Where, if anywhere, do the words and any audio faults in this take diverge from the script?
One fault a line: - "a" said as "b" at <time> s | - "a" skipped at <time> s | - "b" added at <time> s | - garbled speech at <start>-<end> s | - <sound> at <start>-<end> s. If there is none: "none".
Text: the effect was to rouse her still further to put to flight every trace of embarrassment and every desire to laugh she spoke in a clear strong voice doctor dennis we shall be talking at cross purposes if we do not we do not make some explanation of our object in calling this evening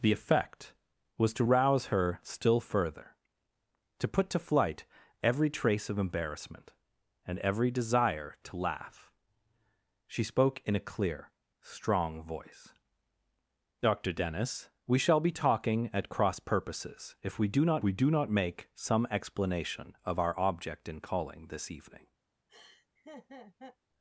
- laugh at 22.5-23.8 s